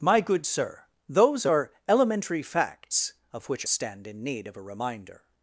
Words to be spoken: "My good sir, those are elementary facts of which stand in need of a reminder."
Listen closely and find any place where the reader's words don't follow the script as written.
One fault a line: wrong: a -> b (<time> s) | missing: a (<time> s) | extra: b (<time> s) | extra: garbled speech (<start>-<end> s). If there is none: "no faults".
no faults